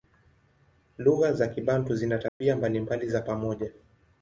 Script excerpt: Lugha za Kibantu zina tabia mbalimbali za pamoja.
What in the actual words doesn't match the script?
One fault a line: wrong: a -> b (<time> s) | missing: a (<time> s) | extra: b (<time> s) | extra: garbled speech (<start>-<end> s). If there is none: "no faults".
no faults